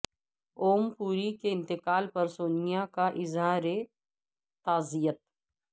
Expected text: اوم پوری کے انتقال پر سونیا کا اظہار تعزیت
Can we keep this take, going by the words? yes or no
yes